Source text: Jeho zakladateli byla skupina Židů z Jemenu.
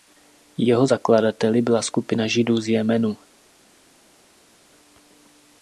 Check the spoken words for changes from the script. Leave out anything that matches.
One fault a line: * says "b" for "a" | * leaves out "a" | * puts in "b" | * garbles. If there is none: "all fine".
all fine